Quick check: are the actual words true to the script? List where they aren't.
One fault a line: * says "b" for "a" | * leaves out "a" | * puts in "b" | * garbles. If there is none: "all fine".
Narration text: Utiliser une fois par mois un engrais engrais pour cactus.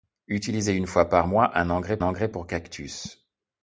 all fine